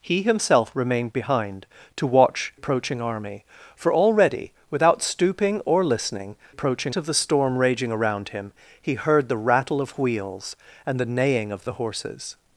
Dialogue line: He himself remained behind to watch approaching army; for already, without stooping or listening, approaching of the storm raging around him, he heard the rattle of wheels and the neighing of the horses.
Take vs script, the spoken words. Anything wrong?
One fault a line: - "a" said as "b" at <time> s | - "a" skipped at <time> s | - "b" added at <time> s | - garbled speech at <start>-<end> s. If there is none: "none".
none